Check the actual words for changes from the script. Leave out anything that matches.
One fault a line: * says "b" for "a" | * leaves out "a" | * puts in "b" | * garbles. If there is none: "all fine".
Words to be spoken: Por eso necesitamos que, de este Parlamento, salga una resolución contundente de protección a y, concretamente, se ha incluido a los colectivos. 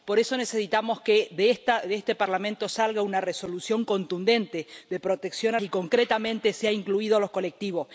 all fine